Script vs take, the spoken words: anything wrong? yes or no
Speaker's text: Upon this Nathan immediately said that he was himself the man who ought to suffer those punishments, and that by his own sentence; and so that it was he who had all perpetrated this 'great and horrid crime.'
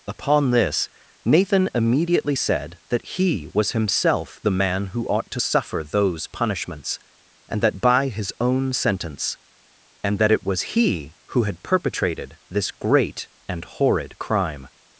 yes